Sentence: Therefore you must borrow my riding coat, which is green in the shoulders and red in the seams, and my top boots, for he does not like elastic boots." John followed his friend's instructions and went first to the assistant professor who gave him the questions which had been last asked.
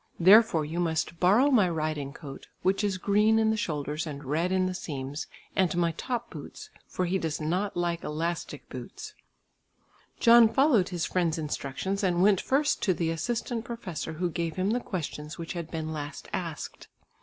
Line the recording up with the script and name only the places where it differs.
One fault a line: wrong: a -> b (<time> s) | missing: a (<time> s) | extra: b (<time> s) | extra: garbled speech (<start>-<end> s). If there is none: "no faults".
no faults